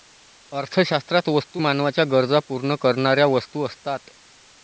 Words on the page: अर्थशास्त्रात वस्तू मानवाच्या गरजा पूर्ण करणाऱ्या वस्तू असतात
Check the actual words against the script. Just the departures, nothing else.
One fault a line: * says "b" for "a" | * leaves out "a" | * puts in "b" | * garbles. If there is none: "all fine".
all fine